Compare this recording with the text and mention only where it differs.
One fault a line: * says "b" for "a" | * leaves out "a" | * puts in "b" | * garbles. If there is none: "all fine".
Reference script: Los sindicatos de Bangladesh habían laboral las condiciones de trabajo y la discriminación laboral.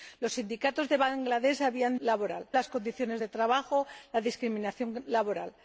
all fine